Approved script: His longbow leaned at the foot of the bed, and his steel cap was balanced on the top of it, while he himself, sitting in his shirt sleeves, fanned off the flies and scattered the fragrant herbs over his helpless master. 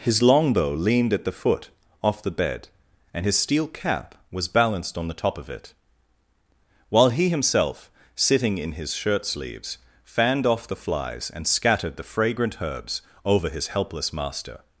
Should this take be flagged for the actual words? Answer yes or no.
yes